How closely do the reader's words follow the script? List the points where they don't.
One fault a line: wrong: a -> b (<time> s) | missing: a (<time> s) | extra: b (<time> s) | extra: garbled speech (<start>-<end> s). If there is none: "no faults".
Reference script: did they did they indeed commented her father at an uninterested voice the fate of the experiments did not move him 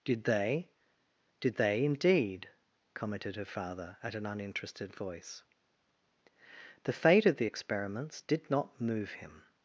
no faults